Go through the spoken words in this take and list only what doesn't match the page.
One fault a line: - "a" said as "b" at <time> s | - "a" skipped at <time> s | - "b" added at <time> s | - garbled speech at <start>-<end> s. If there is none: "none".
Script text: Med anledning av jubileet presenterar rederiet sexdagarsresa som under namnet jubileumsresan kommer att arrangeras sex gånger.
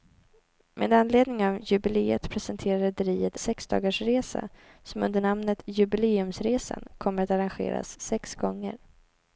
none